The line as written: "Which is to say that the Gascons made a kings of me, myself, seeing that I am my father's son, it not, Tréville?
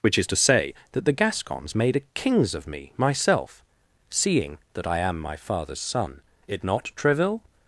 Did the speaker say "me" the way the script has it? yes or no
yes